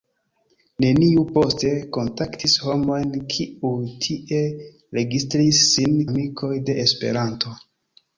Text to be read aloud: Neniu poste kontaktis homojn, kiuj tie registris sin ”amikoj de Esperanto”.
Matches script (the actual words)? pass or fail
pass